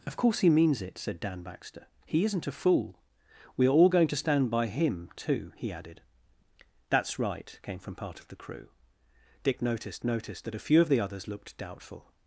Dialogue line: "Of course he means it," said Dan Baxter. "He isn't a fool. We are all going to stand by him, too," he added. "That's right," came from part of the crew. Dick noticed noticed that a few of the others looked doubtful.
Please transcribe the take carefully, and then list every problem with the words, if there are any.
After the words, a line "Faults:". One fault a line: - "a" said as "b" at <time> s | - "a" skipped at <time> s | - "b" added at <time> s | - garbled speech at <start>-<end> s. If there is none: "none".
"Of course he means it," said Dan Baxter. "He isn't a fool. We are all going to stand by him, too," he added. "That's right," came from part of the crew. Dick noticed noticed that a few of the others looked doubtful.
Faults:
none